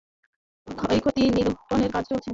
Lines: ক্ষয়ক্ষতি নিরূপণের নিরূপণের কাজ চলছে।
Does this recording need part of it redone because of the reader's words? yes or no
yes